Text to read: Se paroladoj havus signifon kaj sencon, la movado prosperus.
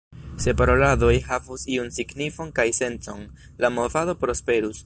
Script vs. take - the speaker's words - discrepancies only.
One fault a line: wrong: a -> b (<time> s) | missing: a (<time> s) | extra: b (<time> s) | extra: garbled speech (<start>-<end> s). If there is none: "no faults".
extra: iun (1.7 s)